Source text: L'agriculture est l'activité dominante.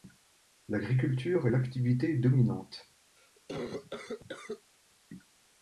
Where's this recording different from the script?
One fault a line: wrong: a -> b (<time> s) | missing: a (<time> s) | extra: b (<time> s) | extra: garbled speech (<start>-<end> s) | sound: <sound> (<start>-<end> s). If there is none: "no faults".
sound: cough (3.2-4.7 s)